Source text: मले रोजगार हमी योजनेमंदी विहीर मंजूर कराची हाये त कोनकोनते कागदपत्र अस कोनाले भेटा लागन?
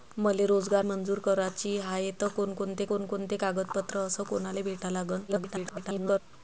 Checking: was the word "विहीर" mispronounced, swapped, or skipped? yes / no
yes